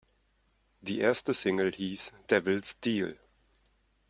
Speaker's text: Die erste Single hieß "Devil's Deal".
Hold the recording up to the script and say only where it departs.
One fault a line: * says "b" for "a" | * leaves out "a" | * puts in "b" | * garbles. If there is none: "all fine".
all fine